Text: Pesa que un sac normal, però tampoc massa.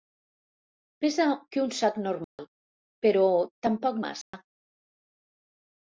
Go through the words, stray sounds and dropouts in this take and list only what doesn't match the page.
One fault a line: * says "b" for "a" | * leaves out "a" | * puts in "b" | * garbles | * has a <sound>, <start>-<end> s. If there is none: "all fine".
* has a dropout, 2.2-2.4 s
* has a dropout, 4.2-4.3 s